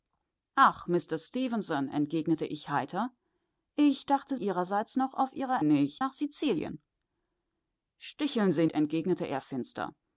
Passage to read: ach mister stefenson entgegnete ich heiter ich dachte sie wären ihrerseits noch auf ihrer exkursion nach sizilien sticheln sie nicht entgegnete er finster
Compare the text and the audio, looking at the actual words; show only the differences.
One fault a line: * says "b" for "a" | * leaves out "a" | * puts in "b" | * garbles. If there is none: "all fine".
* leaves out "sie wären"
* says "nicht" for "exkursion"
* leaves out "nicht"